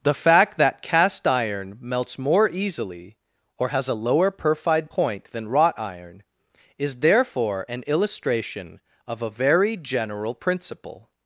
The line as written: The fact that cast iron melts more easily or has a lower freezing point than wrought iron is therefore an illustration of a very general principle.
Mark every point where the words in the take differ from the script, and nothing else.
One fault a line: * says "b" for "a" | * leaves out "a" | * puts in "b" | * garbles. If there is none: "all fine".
* says "perfide" for "freezing"